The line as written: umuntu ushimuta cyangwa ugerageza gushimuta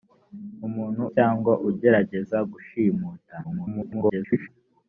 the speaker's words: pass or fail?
fail